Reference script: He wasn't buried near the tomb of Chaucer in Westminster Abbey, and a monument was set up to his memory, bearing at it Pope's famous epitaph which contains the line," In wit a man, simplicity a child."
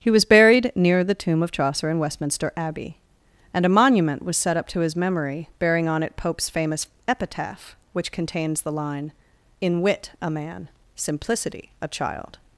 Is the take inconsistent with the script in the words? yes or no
yes